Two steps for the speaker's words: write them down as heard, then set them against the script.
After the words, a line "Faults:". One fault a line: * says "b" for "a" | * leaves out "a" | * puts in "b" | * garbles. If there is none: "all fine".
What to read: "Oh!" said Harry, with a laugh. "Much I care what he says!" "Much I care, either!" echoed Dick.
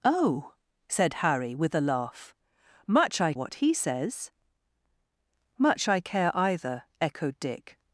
"Oh!" said Harry, with a laugh. "Much I what he says!" "Much I care, either!" echoed Dick.
Faults:
* leaves out "care"